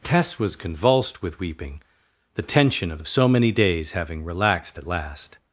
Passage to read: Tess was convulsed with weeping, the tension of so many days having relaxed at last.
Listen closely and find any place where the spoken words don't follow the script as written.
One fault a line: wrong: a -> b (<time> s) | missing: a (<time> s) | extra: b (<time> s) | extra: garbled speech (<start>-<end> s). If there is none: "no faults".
extra: of (3.0 s)